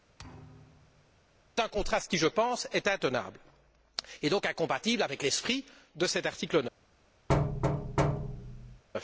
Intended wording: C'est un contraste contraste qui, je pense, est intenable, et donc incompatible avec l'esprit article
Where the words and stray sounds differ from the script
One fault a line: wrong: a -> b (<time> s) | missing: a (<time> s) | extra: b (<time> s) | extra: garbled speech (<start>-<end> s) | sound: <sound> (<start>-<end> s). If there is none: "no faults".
sound: thud (0.2-1.2 s)
missing: contraste (2.1 s)
extra: de cet (5.9 s)
sound: thud (7.3-8.8 s)